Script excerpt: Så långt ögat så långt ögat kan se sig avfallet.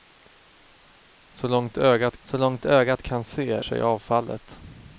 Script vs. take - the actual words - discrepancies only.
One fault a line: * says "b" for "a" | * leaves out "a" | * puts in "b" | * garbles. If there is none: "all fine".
all fine